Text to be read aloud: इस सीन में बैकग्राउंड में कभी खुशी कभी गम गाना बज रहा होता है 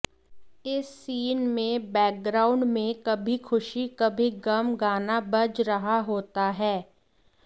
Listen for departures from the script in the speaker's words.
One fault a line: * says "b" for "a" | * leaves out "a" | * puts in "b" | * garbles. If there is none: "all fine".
all fine